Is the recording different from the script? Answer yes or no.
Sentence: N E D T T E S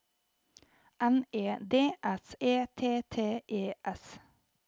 yes